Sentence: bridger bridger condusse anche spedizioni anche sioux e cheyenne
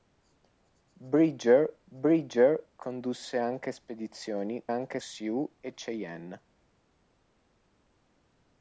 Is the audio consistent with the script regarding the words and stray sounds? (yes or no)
yes